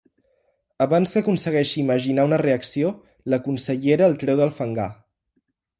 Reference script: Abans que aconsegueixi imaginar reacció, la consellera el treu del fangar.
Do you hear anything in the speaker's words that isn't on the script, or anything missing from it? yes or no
yes